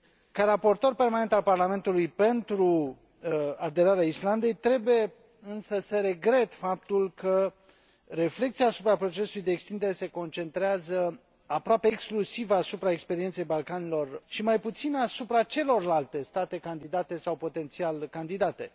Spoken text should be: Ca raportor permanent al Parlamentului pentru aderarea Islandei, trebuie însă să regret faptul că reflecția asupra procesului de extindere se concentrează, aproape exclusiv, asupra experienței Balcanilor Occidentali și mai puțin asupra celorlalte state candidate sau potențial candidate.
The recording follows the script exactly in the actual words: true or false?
false